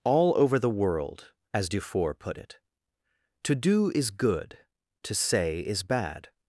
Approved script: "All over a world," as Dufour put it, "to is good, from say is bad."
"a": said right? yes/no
no